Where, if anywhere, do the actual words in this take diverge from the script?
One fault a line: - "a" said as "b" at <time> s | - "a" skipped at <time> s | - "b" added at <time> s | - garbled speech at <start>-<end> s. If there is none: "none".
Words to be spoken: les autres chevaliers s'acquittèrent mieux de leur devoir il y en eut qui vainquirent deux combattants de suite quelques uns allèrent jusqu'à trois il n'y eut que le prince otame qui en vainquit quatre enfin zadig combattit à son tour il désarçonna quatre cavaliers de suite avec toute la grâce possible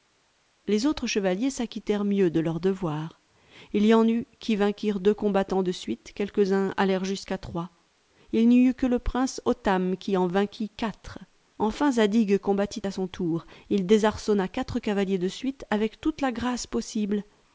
none